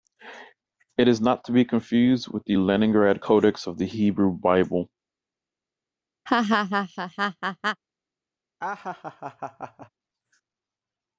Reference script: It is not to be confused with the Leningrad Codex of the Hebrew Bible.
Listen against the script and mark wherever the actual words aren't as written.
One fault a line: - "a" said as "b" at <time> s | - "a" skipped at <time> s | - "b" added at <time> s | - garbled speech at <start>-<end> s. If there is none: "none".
none